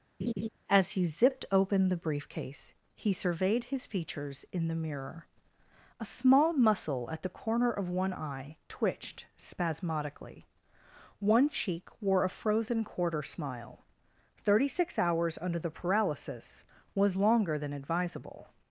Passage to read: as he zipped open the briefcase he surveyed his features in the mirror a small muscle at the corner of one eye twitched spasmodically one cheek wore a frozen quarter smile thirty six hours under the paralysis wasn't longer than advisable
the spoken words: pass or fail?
fail